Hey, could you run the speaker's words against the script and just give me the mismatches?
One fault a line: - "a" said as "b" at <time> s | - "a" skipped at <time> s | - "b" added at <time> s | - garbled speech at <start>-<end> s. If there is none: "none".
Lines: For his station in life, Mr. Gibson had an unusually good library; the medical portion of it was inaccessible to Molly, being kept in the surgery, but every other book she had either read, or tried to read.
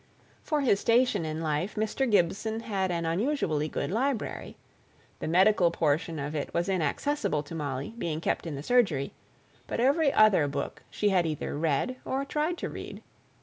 none